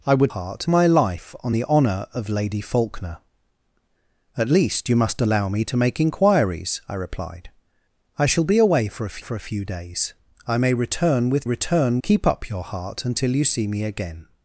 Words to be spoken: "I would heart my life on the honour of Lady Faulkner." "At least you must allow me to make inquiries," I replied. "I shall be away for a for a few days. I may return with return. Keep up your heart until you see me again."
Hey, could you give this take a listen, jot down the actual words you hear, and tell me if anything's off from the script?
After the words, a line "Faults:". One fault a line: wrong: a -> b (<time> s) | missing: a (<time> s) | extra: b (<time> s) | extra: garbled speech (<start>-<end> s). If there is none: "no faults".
"I would heart my life on the honour of Lady Faulkner." "At least you must allow me to make inquiries," I replied. "I shall be away for a for a few days. I may return with return. Keep up your heart until you see me again."
Faults:
no faults